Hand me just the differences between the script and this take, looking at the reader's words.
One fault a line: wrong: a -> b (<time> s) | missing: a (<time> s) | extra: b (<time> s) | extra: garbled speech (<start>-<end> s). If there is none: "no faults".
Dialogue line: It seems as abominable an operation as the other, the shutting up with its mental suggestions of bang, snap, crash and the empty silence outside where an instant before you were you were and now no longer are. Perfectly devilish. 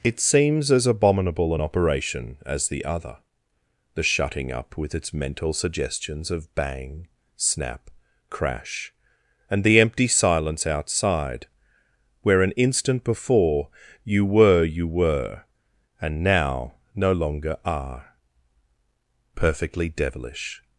no faults